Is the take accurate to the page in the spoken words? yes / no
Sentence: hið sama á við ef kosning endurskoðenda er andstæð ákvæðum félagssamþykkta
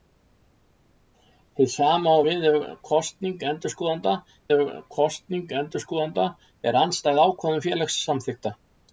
no